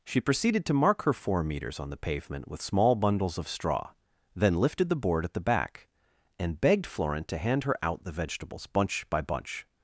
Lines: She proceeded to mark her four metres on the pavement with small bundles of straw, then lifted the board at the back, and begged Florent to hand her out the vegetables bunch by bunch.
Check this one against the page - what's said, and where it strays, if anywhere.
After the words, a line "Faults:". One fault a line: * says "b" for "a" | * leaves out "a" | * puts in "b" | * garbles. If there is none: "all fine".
She proceeded to mark her four metres on the pavement with small bundles of straw, then lifted the board at the back, and begged Florent to hand her out the vegetables bunch by bunch.
Faults:
all fine